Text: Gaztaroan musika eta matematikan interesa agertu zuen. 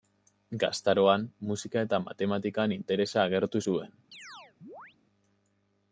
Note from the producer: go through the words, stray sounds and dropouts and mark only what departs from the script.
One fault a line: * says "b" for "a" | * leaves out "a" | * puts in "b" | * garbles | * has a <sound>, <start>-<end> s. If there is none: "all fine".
* has a chirp, 4.1-5.0 s